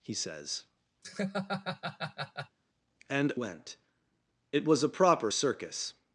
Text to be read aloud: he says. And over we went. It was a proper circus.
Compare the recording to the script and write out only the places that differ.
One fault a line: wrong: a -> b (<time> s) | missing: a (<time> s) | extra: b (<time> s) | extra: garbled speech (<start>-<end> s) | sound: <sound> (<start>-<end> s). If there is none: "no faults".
sound: laugh (1.0-2.6 s)
missing: over we (3.3 s)